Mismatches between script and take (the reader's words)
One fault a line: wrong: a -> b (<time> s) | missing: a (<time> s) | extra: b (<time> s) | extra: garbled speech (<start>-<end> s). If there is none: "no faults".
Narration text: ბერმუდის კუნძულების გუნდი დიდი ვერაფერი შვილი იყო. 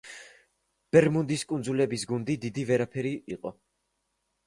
missing: შვილი (3.1 s)